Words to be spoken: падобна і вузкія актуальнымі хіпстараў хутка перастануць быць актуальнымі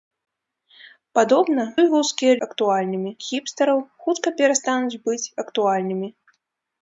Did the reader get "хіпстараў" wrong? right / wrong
right